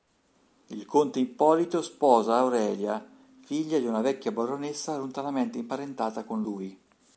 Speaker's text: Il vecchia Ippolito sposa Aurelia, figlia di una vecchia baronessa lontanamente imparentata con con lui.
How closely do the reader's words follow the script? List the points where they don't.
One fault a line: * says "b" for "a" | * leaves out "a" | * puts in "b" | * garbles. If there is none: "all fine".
* says "conte" for "vecchia"
* leaves out "con"